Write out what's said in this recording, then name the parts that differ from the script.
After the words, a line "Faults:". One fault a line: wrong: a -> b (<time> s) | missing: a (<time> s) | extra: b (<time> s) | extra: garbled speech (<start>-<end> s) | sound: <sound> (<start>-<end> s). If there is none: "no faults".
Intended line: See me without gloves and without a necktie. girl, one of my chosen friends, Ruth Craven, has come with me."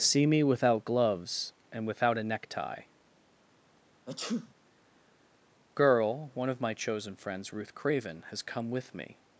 See me without gloves and without a necktie. girl, one of my chosen friends, Ruth Craven, has come with me."
Faults:
sound: sneeze (4.1-4.5 s)